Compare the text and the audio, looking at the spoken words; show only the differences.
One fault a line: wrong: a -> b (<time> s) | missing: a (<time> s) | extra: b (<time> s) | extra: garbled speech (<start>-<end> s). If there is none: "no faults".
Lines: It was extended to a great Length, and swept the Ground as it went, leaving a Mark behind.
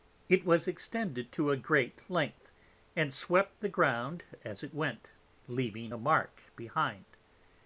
no faults